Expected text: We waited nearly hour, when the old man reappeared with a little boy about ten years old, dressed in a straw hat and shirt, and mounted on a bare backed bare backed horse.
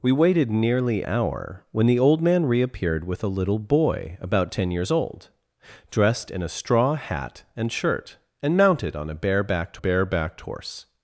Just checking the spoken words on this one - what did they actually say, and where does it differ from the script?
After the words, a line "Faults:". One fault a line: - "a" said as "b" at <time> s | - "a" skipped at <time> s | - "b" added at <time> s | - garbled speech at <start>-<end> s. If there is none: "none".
We waited nearly hour, when the old man reappeared with a little boy about ten years old, dressed in a straw hat and shirt, and mounted on a bare backed bare backed horse.
Faults:
none